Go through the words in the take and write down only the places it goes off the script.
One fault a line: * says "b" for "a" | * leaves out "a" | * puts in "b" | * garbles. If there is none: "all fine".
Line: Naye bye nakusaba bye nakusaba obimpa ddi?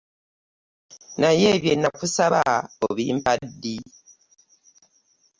* leaves out "bye nakusaba"